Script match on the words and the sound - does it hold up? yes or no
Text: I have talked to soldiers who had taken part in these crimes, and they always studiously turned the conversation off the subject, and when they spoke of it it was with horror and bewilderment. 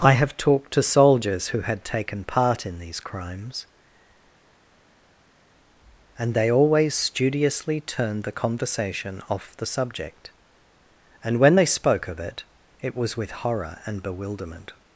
yes